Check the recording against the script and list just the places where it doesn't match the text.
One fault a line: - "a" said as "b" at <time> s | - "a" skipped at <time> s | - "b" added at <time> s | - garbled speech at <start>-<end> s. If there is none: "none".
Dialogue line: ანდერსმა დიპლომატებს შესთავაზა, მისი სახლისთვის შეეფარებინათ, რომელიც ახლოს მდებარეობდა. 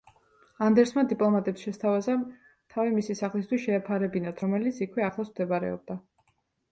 - "თავი" added at 2.8 s
- "იქვე" added at 4.9 s